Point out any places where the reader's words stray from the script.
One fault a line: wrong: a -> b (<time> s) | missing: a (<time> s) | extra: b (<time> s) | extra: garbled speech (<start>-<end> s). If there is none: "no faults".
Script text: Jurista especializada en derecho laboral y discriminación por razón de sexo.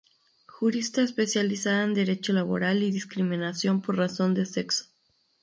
no faults